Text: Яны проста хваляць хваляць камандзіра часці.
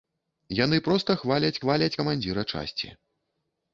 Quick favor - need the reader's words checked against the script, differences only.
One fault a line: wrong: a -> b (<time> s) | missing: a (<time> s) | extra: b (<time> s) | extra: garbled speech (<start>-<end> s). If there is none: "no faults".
no faults